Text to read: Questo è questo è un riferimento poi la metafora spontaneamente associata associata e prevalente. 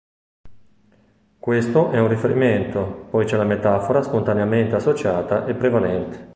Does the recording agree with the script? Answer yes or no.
no